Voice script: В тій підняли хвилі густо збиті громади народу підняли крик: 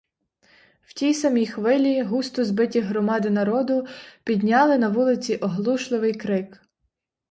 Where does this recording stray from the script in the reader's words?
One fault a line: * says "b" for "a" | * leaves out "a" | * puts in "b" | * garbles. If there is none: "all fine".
* says "самій" for "підняли"
* puts in "на вулиці оглушливий"